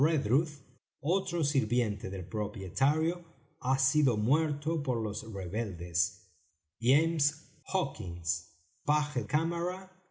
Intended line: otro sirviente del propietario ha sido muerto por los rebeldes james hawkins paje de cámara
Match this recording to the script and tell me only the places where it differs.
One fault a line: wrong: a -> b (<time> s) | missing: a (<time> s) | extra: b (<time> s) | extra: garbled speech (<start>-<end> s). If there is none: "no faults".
missing: de (9.2 s)